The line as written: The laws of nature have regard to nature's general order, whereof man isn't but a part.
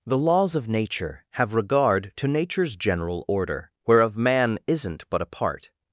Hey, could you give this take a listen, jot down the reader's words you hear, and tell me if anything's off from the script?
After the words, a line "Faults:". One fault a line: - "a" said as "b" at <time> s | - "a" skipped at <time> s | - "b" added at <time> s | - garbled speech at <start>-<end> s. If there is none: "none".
The laws of nature have regard to nature's general order, whereof man isn't but a part.
Faults:
none